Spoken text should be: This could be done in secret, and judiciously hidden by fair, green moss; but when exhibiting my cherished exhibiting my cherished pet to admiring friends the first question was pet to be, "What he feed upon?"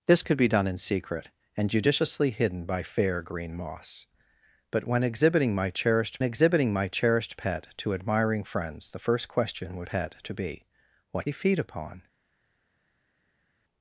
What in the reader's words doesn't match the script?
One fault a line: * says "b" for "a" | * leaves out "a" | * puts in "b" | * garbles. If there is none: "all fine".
all fine